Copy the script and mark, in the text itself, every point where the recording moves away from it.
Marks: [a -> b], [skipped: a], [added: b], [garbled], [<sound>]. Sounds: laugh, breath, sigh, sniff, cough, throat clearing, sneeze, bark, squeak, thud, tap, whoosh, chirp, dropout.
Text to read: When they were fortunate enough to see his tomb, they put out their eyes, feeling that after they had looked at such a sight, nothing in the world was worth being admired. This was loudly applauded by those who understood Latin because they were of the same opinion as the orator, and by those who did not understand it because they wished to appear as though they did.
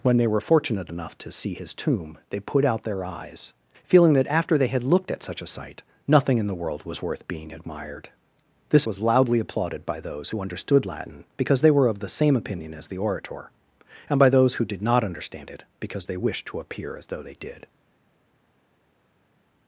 When they were fortunate enough to see his tomb, they put out their eyes, feeling that after they had looked at such a sight, nothing in the world was worth being admired. This was loudly applauded by those who understood Latin because they were of the same opinion as the orator, and by those who did not understand it because they wished to appear as though they did.